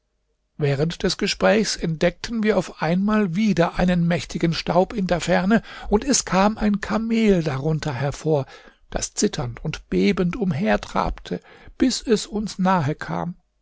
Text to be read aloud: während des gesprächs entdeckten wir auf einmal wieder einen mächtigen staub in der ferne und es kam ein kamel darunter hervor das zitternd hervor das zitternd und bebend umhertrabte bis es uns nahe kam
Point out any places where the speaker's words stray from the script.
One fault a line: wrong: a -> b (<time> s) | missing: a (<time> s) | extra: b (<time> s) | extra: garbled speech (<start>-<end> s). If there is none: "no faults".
missing: hervor das zitternd (9.6 s)